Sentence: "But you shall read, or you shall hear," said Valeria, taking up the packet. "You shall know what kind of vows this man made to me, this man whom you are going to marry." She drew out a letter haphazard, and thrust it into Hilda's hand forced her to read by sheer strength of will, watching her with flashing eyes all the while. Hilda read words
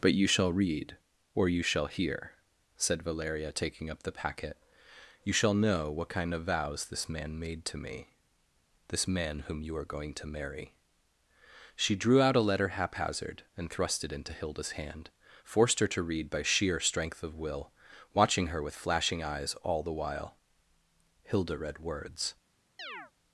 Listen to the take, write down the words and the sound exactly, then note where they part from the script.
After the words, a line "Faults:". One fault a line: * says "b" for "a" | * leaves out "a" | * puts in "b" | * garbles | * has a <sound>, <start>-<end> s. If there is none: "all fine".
"But you shall read, or you shall hear," said Valeria, taking up the packet. "You shall know what kind of vows this man made to me, this man whom you are going to marry." She drew out a letter haphazard, and thrust it into Hilda's hand forced her to read by sheer strength of will, watching her with flashing eyes all the while. Hilda read words
Faults:
* has a chirp, 22.8-23.1 s